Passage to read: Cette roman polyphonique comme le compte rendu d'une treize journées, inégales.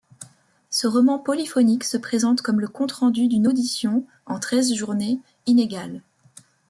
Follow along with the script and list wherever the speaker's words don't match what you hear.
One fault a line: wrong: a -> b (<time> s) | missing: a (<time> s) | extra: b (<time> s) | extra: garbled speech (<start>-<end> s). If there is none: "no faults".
wrong: Cette -> Ce (0.7 s)
extra: se présente (1.8 s)
extra: audition en (3.4 s)